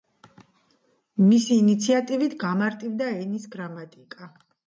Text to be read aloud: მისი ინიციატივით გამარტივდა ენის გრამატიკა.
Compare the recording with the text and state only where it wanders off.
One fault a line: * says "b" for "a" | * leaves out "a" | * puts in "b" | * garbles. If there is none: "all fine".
all fine